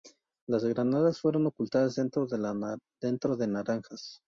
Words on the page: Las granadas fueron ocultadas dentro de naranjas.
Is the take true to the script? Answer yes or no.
yes